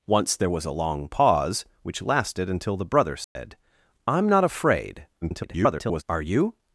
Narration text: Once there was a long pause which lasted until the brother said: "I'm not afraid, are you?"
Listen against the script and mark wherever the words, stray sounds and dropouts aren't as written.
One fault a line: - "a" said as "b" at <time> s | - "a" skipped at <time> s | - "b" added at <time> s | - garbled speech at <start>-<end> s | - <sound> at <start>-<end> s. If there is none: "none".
- dropout at 3.2-3.4 s
- garbled speech at 5.2-6.0 s